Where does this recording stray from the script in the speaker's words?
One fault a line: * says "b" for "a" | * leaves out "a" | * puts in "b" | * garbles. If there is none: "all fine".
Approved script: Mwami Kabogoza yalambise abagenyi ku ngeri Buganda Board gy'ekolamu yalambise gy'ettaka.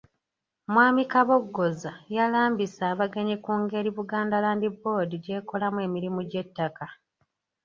* puts in "Land"
* says "emirimu" for "yalambise"